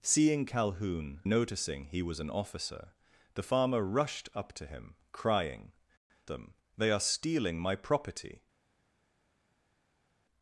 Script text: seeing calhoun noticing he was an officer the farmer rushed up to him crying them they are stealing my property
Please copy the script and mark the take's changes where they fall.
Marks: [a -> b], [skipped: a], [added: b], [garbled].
seeing calhoun noticing he was an officer the farmer rushed up to him crying them they are stealing my property